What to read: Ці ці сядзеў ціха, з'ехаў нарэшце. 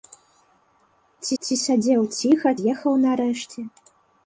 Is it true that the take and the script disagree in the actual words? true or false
false